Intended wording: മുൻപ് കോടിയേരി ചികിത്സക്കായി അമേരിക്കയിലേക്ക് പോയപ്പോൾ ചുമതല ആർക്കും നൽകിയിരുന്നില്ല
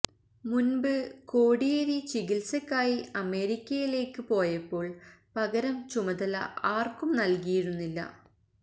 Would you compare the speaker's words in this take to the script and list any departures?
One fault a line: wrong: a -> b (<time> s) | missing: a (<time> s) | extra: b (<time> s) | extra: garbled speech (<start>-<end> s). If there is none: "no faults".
extra: പകരം (5.4 s)